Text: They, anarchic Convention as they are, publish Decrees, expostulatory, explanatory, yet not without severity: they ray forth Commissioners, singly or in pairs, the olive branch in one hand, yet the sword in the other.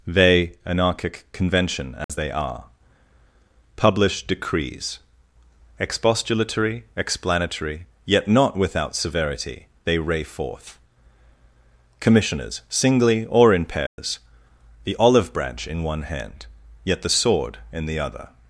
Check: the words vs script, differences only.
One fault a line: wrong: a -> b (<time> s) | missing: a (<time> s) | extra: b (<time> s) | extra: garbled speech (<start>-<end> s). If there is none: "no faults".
no faults